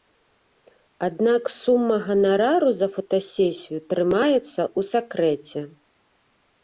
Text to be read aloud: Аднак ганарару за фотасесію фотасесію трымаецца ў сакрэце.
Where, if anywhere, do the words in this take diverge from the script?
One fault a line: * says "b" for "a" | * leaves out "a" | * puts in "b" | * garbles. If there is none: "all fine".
* puts in "сума"
* leaves out "фотасесію"